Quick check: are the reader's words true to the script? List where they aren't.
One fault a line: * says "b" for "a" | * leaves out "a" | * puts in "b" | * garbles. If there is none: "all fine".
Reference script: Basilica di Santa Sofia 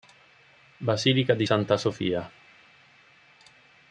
all fine